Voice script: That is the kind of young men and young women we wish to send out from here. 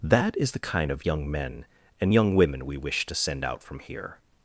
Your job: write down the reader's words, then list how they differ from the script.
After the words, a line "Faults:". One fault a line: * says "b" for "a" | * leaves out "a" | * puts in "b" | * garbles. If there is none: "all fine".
That is the kind of young men and young women we wish to send out from here.
Faults:
all fine